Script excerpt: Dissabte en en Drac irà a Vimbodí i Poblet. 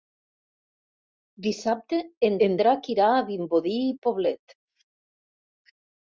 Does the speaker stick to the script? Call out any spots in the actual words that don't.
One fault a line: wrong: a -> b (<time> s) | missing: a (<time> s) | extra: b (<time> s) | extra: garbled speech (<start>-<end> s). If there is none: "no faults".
no faults